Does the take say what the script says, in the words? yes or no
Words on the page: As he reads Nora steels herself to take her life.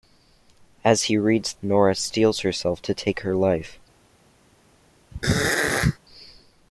yes